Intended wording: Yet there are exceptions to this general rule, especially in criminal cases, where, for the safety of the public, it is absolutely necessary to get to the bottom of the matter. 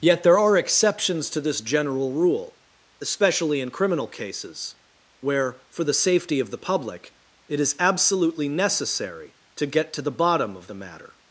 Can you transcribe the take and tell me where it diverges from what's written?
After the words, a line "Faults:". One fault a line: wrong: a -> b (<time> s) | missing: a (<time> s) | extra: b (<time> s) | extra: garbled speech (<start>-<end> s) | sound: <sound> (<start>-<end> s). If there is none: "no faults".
Yet there are exceptions to this general rule, especially in criminal cases, where, for the safety of the public, it is absolutely necessary to get to the bottom of the matter.
Faults:
no faults